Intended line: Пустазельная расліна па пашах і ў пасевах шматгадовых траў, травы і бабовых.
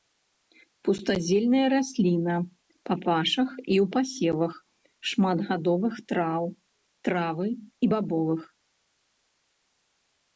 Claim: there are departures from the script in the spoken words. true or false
false